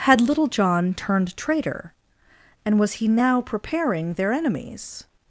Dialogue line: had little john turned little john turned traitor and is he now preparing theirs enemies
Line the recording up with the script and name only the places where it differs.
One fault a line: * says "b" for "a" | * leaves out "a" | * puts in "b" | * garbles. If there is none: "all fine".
* leaves out "little john turned"
* says "was" for "is"
* says "their" for "theirs"